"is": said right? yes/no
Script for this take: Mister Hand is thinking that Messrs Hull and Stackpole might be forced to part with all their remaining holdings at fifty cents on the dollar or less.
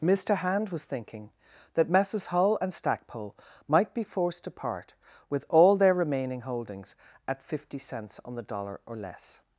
no